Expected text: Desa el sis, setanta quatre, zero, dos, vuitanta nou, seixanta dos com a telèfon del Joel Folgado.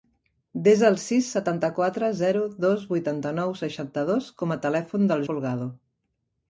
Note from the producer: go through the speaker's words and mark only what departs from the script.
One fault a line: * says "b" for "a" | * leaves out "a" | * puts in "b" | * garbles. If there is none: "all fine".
* leaves out "Joel"